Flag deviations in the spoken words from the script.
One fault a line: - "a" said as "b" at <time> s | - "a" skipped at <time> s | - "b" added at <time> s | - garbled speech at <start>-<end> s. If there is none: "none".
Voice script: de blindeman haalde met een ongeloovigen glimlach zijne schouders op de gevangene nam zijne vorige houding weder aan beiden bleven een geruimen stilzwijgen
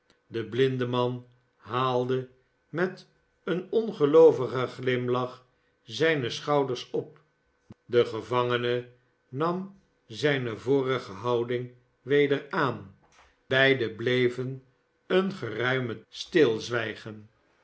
none